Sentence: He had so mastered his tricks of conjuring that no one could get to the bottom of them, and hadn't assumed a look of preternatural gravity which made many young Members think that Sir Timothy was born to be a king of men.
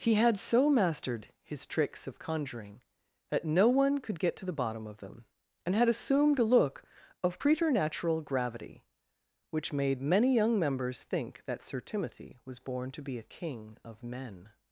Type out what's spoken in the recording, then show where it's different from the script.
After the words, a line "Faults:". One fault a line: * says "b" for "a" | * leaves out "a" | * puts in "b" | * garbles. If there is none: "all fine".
He had so mastered his tricks of conjuring that no one could get to the bottom of them, and had assumed a look of preternatural gravity which made many young Members think that Sir Timothy was born to be a king of men.
Faults:
* says "had" for "hadn't"